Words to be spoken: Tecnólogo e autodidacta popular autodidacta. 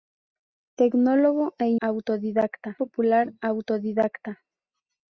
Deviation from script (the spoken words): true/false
false